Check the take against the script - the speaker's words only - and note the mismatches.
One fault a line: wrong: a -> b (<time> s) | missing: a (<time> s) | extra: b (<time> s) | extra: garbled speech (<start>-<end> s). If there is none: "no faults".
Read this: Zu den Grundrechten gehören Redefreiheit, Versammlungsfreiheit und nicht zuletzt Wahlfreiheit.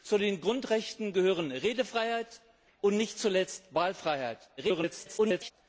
missing: Versammlungsfreiheit (2.4 s)
extra: garbled speech (4.6-5.5 s)